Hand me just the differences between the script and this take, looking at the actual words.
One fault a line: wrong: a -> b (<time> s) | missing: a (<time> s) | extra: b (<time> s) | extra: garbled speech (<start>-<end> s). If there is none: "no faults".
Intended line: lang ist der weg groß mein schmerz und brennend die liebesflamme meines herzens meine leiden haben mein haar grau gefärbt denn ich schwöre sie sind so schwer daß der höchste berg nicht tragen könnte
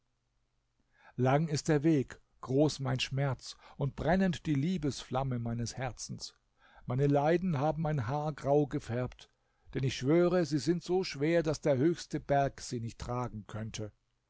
extra: sie (12.6 s)